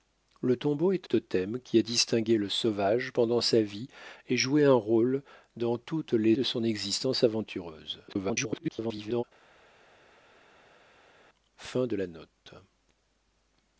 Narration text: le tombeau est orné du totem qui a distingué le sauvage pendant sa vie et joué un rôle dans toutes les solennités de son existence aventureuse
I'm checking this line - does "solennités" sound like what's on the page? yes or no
no